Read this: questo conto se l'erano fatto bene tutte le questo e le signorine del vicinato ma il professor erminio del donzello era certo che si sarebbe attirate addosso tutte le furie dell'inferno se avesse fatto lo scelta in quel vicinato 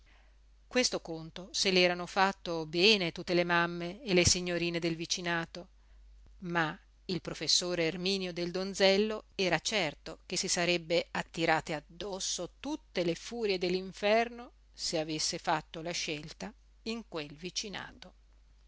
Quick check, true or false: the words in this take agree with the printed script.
false